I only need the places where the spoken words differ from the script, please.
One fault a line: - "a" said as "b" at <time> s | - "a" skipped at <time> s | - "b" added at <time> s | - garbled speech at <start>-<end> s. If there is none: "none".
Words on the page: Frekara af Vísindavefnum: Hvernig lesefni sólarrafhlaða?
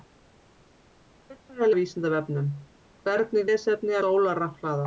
none